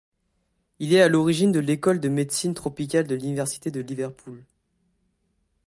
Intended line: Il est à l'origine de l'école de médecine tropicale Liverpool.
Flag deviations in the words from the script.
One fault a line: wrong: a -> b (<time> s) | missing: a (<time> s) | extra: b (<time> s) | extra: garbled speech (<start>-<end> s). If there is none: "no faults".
extra: de l'Université de (3.1 s)